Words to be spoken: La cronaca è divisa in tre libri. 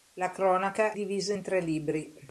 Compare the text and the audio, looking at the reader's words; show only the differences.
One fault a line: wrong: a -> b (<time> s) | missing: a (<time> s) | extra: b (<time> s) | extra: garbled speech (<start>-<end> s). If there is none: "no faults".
missing: è (0.9 s)